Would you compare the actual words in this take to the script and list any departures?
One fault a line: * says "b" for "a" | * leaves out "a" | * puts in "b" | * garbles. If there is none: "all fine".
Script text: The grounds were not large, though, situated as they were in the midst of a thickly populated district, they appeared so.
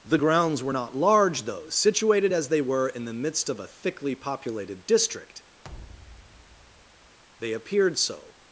all fine